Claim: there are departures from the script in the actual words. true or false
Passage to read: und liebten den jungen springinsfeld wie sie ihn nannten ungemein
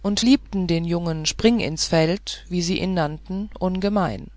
false